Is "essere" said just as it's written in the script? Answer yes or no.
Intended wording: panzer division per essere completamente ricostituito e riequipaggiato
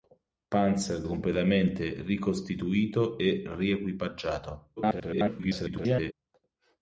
no